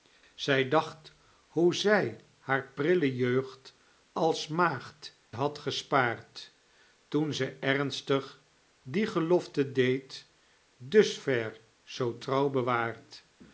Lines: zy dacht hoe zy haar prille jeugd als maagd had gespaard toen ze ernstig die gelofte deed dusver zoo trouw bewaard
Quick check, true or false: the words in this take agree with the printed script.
true